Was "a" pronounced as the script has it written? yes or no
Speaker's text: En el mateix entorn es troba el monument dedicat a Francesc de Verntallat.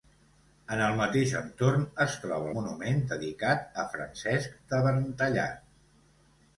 yes